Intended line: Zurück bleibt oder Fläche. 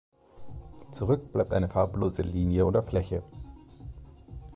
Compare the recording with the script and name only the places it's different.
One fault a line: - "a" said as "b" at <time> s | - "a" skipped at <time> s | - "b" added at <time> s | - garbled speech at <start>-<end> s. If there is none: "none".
- "eine farblose Linie" added at 1.5 s